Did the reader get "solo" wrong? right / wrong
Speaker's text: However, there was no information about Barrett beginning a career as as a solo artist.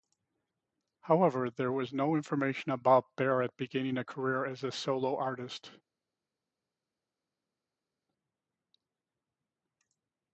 right